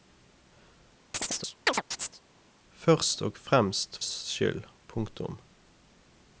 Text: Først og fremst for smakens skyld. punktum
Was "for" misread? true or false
true